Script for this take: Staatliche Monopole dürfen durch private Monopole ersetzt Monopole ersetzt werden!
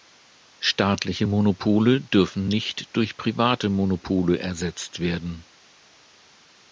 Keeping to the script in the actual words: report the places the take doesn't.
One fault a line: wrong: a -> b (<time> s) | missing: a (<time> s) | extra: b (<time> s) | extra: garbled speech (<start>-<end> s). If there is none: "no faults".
extra: nicht (2.5 s)
missing: Monopole ersetzt (5.0 s)